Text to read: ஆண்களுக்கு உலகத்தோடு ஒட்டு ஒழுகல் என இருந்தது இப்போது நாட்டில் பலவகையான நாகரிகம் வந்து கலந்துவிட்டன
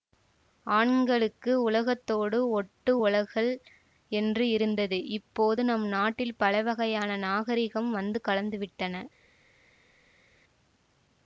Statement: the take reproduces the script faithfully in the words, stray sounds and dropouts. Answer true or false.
false